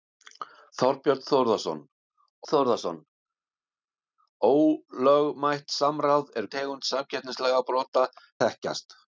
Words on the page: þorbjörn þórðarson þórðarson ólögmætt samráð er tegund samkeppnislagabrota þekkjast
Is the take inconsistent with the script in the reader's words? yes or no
no